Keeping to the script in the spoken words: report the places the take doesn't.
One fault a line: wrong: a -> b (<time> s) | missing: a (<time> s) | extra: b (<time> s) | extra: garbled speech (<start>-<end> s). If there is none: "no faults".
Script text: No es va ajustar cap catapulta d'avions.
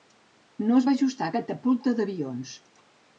missing: cap (1.3 s)